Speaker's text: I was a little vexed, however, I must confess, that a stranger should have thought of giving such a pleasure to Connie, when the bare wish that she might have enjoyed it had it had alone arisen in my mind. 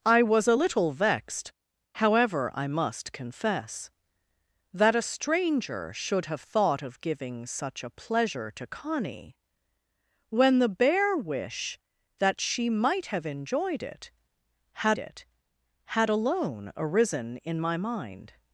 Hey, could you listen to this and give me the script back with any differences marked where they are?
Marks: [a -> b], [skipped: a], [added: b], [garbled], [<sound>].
I was a little vexed, however, I must confess, that a stranger should have thought of giving such a pleasure to Connie, when the bare wish that she might have enjoyed it had it had alone arisen in my mind.